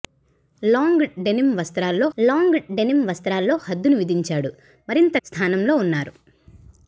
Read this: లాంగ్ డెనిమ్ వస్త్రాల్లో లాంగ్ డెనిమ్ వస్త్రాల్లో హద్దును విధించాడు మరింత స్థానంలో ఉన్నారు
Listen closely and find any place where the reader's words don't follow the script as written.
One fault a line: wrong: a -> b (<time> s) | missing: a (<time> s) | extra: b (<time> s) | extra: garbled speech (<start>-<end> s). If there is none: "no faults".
no faults